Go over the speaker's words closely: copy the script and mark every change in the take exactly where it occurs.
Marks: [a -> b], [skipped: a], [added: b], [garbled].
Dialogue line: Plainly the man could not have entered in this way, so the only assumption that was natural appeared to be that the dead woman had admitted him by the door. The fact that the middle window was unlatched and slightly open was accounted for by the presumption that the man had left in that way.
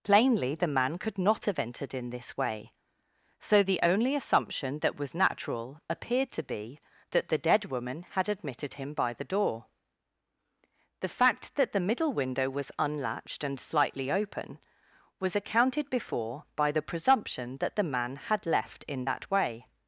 Plainly the man could not have entered in this way, so the only assumption that was natural appeared to be that the dead woman had admitted him by the door. The fact that the middle window was unlatched and slightly open was accounted [for -> before] by the presumption that the man had left in that way.